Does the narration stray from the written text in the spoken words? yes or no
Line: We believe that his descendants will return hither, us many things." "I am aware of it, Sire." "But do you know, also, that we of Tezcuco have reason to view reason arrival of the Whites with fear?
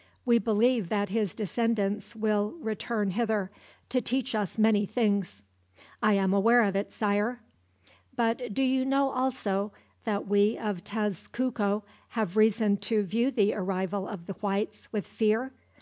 yes